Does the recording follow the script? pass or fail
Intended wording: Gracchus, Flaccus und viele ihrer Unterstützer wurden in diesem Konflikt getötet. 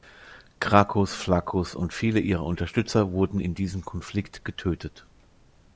pass